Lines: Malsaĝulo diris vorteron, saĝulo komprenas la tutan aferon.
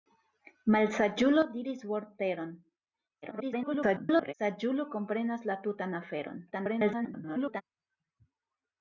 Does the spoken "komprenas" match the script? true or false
true